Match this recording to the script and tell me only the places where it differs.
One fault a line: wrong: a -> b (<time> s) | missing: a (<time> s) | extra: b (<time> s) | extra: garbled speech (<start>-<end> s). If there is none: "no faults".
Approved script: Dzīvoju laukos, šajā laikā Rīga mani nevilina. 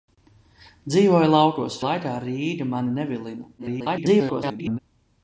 missing: šajā (1.8 s)
extra: garbled speech (3.6-4.8 s)